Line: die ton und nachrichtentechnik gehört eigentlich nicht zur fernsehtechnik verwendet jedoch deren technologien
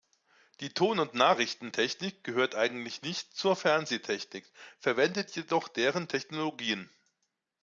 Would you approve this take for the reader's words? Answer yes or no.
yes